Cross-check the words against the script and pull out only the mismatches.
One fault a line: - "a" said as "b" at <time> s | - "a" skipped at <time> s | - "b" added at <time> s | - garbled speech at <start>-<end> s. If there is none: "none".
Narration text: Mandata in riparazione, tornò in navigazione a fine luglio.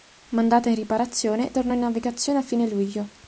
none